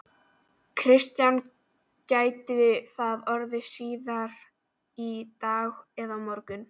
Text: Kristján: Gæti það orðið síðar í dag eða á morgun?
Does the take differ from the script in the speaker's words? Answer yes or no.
no